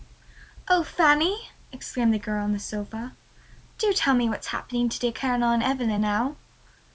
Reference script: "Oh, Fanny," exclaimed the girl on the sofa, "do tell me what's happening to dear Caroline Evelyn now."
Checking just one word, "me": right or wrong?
right